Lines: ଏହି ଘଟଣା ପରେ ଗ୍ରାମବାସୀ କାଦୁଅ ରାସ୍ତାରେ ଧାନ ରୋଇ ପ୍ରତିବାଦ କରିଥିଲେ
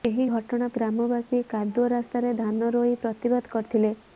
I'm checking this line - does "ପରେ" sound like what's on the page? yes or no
no